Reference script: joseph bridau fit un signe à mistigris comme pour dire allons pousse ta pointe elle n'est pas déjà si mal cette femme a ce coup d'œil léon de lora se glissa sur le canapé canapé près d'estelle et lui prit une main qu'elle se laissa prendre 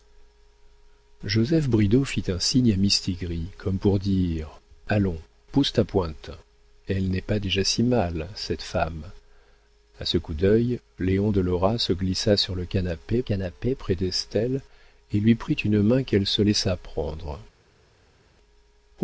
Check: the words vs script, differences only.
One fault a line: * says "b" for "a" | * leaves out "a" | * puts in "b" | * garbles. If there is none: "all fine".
all fine